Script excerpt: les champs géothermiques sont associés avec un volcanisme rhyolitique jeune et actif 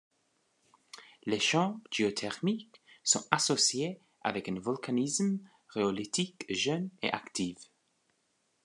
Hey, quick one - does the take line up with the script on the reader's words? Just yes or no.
yes